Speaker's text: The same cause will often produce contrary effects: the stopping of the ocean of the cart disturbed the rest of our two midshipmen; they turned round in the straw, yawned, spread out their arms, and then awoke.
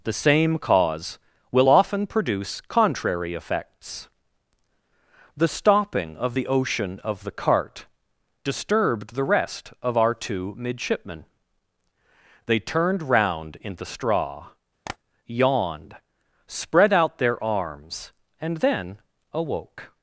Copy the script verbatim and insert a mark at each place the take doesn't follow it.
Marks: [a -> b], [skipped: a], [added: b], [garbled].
The same cause will often produce contrary effects: the stopping of the ocean of the cart disturbed the rest of our two midshipmen; they turned round in the straw, yawned, spread out their arms, and then awoke.